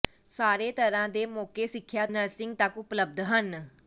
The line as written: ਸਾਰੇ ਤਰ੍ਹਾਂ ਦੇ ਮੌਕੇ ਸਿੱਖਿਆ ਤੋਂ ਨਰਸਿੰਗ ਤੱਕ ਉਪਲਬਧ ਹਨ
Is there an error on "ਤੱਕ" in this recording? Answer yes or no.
no